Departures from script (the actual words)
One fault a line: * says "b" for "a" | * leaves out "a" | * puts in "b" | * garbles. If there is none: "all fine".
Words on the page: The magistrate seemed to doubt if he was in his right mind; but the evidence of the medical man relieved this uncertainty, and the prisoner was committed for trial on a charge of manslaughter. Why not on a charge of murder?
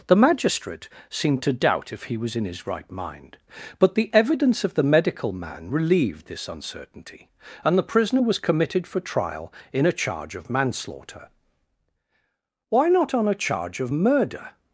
* says "in" for "on"